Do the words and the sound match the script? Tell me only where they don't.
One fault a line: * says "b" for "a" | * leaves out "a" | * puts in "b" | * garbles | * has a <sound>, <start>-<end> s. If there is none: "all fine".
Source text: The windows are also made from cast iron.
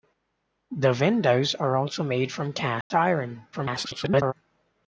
* has a dropout, 2.8-2.9 s
* garbles